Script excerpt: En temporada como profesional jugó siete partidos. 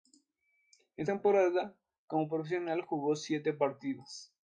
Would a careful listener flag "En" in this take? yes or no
no